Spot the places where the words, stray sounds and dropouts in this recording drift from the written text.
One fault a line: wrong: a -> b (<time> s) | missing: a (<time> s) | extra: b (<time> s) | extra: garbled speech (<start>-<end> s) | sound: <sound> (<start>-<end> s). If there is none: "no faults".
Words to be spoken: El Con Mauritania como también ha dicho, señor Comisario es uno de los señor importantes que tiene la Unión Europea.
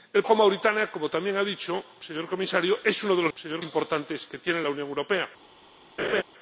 sound: laugh (6.0-6.2 s)